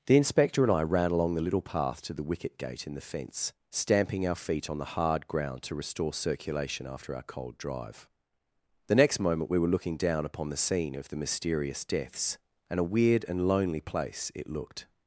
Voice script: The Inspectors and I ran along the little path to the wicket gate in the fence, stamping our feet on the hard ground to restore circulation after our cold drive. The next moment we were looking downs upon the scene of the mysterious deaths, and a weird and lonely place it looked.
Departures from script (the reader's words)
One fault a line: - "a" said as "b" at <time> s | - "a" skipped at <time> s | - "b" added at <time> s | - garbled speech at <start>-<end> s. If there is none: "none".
- "Inspectors" said as "Inspector" at 0.2 s
- "downs" said as "down" at 10.0 s